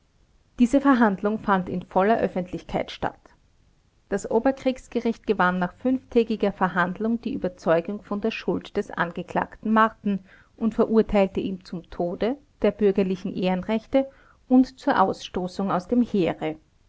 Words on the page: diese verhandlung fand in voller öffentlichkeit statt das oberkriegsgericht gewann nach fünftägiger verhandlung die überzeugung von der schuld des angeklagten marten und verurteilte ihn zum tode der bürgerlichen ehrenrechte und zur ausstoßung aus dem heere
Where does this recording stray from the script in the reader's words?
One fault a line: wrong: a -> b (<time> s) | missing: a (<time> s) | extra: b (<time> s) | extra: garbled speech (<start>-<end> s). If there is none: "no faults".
no faults